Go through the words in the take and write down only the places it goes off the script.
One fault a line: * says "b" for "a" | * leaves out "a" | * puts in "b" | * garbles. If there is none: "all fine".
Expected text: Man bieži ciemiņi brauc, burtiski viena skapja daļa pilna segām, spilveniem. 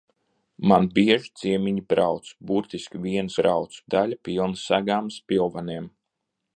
* says "brauc" for "skapja"